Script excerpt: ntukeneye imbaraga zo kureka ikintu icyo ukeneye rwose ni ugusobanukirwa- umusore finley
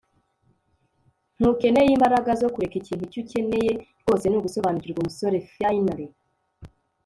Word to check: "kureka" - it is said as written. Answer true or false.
true